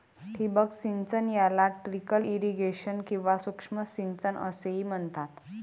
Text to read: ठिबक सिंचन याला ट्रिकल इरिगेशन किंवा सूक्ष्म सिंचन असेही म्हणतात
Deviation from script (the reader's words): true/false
false